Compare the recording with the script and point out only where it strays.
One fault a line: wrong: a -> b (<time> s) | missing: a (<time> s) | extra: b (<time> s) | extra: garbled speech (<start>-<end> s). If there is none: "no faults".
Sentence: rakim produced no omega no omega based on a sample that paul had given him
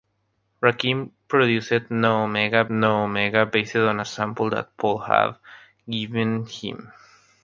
no faults